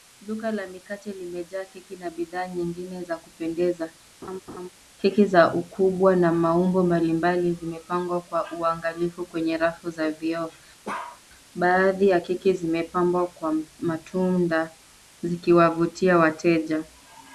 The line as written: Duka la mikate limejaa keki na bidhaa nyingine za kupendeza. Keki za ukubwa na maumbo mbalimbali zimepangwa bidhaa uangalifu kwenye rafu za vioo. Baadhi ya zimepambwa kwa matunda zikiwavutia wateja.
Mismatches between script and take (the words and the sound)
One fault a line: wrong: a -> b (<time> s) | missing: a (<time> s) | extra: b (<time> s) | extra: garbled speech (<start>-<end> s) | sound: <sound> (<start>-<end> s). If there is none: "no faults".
sound: laugh (4.2-4.7 s)
wrong: bidhaa -> kwa (8.2 s)
sound: bark (10.8-11.2 s)
extra: keki (12.2 s)